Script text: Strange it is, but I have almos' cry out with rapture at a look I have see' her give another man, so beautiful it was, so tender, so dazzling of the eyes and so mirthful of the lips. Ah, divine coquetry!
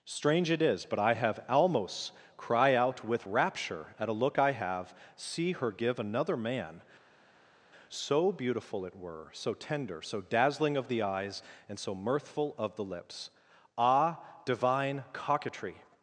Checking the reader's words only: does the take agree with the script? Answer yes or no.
no